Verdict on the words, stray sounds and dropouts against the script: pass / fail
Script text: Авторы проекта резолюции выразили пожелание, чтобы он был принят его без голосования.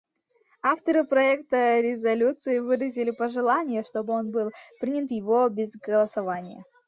pass